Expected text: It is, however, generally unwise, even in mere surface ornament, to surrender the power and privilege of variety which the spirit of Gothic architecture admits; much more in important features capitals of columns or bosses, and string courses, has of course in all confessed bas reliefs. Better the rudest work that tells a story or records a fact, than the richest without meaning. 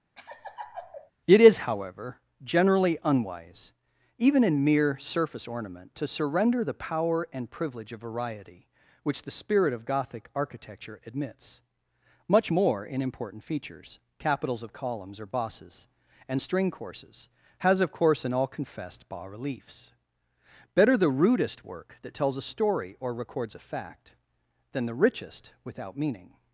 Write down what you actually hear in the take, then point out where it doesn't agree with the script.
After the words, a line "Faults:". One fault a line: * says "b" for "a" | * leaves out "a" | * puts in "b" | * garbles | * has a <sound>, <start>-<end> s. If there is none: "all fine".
It is, however, generally unwise, even in mere surface ornament, to surrender the power and privilege of variety which the spirit of Gothic architecture admits; much more in important features capitals of columns or bosses, and string courses, has of course in all confessed bas reliefs. Better the rudest work that tells a story or records a fact, than the richest without meaning.
Faults:
* has a laugh, 0.2-1.1 s